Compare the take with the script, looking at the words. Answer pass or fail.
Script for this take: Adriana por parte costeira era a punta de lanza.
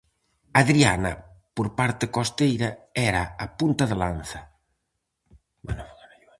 pass